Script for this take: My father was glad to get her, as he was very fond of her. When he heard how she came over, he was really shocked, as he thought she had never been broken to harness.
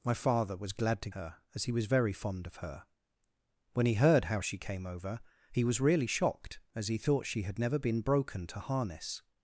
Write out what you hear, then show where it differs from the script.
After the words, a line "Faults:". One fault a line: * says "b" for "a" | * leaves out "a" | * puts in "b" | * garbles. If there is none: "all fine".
My father was glad to her, as he was very fond of her. When he heard how she came over, he was really shocked, as he thought she had never been broken to harness.
Faults:
* leaves out "get"